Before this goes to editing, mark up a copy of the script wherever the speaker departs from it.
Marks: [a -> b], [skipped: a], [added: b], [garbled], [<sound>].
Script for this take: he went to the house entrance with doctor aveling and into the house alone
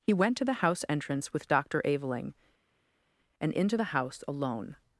he went to the house entrance with doctor aveling and into the house alone